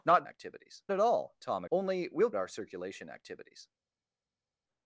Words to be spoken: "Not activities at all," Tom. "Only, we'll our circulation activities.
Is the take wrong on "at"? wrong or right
right